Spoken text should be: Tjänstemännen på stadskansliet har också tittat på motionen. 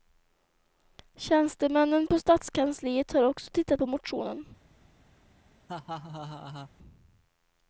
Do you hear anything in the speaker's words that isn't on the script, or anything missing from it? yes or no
no